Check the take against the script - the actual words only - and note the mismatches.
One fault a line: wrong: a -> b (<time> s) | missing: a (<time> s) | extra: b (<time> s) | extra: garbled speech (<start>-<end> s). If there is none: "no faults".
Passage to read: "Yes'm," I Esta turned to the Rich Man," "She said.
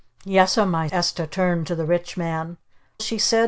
no faults